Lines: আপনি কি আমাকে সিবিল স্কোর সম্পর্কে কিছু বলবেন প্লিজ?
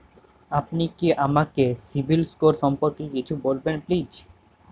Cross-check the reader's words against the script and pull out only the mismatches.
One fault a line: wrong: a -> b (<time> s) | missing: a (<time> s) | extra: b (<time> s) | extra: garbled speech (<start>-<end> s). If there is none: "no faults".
no faults